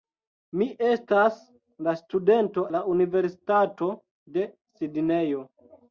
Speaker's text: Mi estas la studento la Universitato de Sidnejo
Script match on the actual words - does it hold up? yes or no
yes